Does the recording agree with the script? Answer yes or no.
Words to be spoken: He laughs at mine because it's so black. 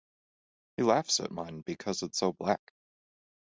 yes